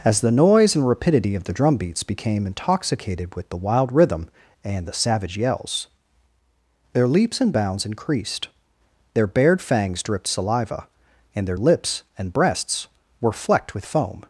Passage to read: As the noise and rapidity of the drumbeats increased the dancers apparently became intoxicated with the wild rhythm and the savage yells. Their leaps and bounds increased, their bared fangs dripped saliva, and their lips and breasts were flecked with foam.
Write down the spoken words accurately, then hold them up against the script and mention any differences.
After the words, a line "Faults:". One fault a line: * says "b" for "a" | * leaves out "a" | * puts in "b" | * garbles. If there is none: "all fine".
As the noise and rapidity of the drumbeats became intoxicated with the wild rhythm and the savage yells. Their leaps and bounds increased, their bared fangs dripped saliva, and their lips and breasts were flecked with foam.
Faults:
* leaves out "increased the dancers apparently"